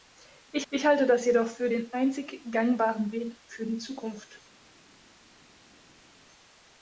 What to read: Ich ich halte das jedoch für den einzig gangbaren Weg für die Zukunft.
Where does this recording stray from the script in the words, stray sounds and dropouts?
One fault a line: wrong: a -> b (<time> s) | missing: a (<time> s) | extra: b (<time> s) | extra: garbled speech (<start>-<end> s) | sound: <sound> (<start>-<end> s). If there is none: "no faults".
no faults